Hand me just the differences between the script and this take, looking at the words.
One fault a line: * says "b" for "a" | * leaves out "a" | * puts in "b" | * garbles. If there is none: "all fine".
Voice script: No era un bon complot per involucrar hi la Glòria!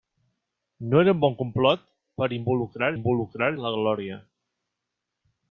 * puts in "involucrar"